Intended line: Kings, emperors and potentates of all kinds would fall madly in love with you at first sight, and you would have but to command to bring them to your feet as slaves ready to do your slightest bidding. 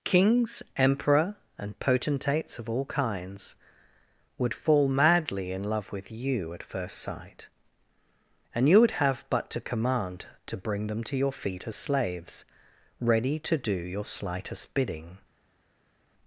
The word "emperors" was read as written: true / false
false